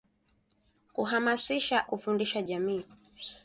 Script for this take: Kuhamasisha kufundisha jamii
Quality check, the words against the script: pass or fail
pass